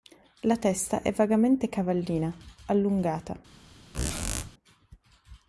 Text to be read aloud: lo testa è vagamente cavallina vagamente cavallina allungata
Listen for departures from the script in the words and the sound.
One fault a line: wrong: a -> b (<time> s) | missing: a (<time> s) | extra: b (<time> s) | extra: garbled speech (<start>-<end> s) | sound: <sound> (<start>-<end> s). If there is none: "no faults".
wrong: lo -> la (0.4 s)
missing: vagamente cavallina (2.4 s)
sound: squeak (3.9-4.5 s)